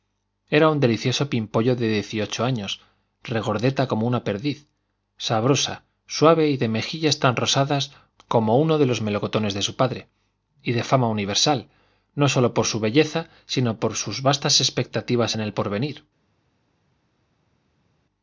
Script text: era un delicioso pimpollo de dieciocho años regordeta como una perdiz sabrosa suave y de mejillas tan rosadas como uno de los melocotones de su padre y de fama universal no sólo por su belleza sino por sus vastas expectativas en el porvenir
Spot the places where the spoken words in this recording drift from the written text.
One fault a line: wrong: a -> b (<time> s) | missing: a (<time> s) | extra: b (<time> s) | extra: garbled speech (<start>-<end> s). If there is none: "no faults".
no faults